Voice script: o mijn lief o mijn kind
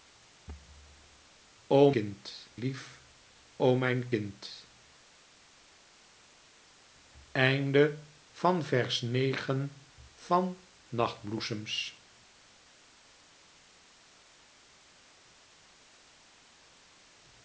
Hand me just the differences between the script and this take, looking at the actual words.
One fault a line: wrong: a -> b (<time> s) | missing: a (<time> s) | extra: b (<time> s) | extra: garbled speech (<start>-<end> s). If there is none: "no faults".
wrong: mijn -> kind (1.9 s)